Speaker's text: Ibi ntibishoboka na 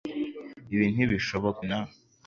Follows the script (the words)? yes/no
yes